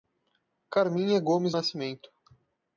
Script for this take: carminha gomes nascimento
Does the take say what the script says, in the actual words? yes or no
yes